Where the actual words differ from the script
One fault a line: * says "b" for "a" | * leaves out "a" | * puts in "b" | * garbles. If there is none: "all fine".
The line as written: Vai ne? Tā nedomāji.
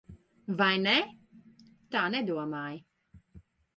all fine